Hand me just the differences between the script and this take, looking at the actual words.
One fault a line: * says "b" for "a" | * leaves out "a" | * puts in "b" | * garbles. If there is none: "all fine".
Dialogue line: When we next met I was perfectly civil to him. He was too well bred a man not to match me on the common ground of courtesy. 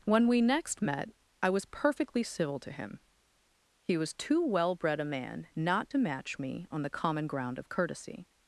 all fine